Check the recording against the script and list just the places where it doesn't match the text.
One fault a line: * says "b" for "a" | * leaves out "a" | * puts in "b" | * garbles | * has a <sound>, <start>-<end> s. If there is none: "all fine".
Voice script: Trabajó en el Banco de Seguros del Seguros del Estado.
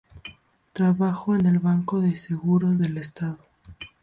* leaves out "Seguros del"